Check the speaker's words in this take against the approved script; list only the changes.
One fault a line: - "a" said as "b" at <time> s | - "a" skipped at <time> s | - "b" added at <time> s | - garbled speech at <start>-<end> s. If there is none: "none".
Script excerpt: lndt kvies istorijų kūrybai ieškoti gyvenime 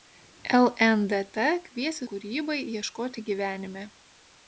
- "istorijų" skipped at 2.0 s